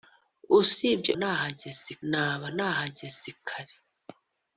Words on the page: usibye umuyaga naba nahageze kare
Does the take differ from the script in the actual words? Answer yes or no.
yes